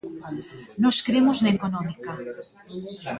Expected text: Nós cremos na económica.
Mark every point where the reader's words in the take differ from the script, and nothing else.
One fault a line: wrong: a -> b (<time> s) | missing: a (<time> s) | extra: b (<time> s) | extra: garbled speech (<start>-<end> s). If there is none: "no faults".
no faults